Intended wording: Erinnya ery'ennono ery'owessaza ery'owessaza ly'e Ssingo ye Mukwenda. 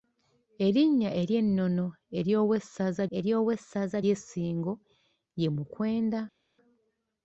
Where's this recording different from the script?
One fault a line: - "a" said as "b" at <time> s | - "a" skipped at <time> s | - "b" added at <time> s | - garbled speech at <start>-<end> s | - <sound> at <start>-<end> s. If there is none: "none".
none